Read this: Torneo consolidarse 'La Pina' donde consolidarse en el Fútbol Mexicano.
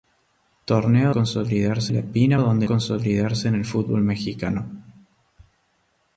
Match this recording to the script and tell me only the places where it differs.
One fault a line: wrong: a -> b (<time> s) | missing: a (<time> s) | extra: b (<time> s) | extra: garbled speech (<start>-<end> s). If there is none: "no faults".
no faults